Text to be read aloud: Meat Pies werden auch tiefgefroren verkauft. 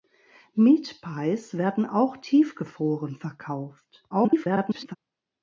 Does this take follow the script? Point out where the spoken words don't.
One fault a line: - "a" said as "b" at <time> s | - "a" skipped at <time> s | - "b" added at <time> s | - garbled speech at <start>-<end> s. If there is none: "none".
- garbled speech at 4.1-5.0 s